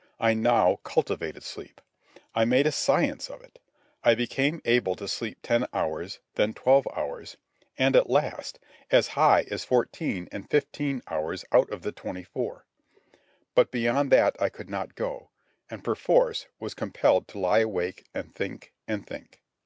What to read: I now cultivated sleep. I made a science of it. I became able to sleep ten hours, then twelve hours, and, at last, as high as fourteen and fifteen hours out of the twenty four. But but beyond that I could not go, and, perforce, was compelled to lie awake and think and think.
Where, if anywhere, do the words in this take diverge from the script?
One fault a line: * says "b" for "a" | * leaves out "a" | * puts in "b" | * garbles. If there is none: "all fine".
* leaves out "but"